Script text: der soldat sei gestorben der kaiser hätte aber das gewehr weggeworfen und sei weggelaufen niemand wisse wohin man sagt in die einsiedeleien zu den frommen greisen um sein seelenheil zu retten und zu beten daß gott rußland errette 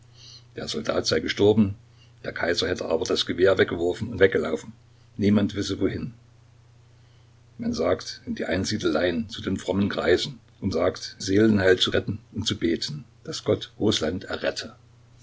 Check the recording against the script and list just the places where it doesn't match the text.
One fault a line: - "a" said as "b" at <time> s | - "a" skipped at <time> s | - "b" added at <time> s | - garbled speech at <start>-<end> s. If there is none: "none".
- "sei" skipped at 4.2 s
- "sein" said as "sagt" at 10.7 s